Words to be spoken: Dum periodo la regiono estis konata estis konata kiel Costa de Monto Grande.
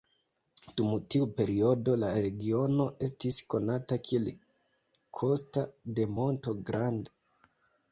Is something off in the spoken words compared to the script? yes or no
yes